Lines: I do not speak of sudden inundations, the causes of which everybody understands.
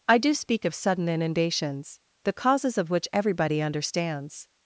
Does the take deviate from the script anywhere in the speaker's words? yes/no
yes